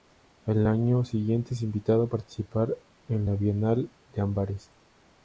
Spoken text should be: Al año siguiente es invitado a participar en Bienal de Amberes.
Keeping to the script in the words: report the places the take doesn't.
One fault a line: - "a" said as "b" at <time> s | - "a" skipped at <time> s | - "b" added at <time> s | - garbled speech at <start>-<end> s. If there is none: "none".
- "la" added at 3.2 s